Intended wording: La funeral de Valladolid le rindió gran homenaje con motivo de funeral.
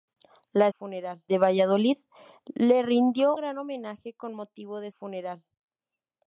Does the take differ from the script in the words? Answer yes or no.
no